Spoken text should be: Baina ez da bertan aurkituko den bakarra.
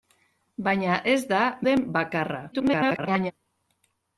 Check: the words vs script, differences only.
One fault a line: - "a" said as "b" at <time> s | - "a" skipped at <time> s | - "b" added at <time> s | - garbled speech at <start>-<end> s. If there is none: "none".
- "bertan aurkituko" skipped at 1.4 s
- garbled speech at 2.5-3.3 s